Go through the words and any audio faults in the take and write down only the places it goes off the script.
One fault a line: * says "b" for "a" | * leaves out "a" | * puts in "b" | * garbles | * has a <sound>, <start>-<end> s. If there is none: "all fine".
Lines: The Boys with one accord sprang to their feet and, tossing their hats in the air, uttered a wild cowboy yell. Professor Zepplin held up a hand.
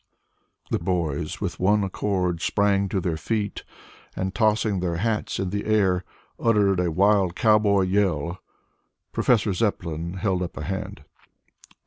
all fine